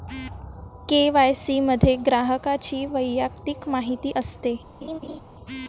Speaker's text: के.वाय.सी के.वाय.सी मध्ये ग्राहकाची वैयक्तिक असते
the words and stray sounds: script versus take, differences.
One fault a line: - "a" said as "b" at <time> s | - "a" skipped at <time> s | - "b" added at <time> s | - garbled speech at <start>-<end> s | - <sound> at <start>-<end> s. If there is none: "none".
- "के.वाय.सी" skipped at 1.6 s
- "माहिती" added at 3.7 s
- laugh at 4.8-5.2 s